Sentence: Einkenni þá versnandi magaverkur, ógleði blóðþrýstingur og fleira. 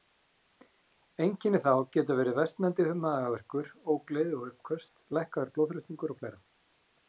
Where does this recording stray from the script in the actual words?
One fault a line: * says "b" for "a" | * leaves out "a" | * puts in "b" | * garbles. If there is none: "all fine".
* puts in "geta verið"
* puts in "og uppköst lækkaður"